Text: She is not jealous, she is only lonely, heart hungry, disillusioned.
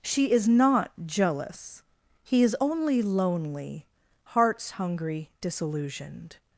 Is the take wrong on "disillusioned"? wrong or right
right